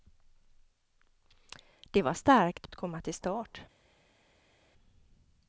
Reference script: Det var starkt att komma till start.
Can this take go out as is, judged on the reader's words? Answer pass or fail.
pass